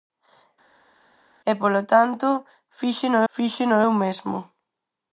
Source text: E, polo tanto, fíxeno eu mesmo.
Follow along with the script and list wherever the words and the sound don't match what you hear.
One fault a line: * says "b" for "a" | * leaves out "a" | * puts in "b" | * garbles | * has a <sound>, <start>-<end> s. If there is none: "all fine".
* puts in "fíxeno"